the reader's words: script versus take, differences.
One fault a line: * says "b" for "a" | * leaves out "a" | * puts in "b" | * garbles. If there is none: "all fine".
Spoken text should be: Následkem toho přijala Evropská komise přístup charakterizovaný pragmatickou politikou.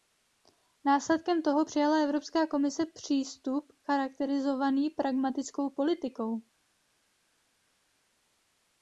all fine